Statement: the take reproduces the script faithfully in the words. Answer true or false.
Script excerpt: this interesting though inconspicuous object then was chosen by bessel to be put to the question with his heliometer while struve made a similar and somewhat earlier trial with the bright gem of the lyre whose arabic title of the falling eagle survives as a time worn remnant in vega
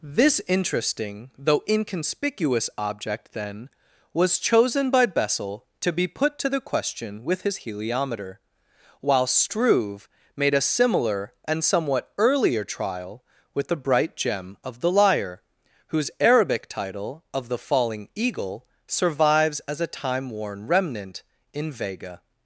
true